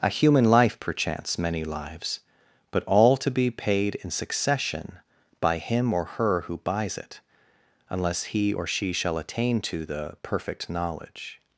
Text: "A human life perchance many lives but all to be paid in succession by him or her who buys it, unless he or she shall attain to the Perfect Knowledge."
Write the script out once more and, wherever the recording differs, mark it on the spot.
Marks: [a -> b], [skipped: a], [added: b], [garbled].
"A human life perchance many lives but all to be paid in succession by him or her who buys it, unless he or she shall attain to the Perfect Knowledge."